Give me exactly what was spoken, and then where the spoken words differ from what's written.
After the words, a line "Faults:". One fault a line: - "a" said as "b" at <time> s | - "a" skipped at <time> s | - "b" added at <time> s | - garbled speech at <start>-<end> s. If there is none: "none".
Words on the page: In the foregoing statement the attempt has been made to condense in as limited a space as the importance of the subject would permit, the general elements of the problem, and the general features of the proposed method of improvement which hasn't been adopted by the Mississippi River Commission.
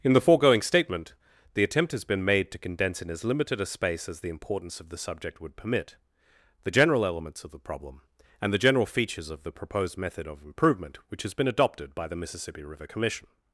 In the foregoing statement the attempt has been made to condense in as limited a space as the importance of the subject would permit, the general elements of the problem, and the general features of the proposed method of improvement which has been adopted by the Mississippi River Commission.
Faults:
- "hasn't" said as "has" at 11.2 s